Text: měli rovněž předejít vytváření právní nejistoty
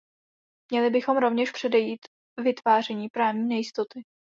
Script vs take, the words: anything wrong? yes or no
yes